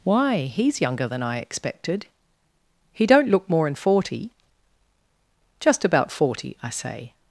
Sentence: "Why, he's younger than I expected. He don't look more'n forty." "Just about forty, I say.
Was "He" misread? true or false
false